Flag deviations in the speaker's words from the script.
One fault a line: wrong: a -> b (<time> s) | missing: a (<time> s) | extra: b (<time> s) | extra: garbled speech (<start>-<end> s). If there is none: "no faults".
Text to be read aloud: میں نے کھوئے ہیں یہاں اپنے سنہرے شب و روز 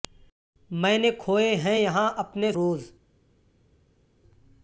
missing: سنہرے شب و (2.5 s)